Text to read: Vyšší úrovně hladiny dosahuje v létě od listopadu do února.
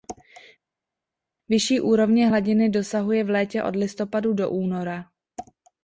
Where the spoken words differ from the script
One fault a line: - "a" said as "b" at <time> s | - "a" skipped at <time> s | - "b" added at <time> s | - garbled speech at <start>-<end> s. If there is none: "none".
none